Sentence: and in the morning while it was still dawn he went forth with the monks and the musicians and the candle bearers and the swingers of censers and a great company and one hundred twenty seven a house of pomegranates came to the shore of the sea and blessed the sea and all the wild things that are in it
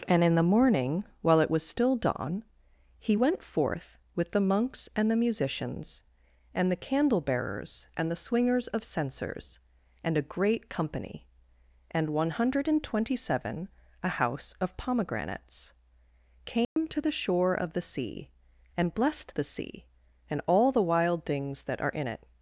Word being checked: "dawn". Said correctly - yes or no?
yes